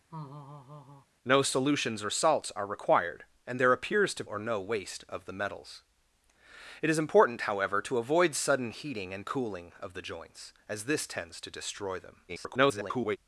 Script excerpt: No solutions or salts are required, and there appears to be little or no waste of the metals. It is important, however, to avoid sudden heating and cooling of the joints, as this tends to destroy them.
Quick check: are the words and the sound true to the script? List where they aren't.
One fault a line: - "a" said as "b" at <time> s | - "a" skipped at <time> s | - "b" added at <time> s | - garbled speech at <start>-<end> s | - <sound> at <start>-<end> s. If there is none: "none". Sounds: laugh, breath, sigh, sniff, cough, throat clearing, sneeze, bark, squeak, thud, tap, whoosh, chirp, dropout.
- laugh at 0.1-1.1 s
- "be little" skipped at 4.2 s
- garbled speech at 12.3-13.2 s